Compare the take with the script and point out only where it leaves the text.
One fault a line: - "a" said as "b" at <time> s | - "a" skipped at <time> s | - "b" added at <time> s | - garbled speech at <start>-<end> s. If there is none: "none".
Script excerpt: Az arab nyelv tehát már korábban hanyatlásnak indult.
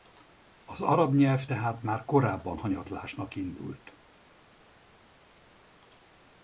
none